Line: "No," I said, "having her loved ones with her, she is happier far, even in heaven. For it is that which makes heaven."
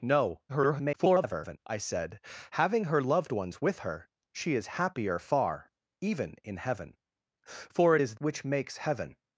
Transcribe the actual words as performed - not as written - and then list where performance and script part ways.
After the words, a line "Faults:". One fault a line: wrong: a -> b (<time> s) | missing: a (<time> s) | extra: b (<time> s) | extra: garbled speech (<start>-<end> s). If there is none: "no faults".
"No," [garbled] I said, "having her loved ones with her, she is happier far, even in heaven. For it is which makes heaven."
Faults:
extra: garbled speech (0.5-1.6 s)
missing: that (8.2 s)